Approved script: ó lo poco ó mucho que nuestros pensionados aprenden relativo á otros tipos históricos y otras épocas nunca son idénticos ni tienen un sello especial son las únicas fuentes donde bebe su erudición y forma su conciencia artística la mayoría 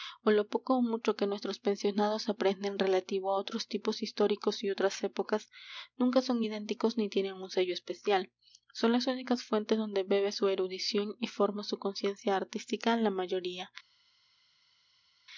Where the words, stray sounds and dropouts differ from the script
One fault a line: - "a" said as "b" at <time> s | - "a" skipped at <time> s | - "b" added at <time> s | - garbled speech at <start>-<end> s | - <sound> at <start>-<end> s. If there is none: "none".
none